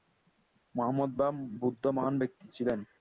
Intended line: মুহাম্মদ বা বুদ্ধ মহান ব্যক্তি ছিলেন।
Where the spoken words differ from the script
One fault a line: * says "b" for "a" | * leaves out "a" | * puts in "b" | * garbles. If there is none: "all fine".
all fine